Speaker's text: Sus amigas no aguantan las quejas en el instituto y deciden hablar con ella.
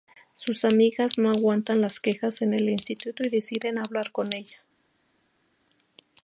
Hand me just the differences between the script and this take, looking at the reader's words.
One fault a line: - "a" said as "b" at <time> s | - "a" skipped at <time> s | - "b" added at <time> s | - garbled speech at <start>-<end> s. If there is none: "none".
none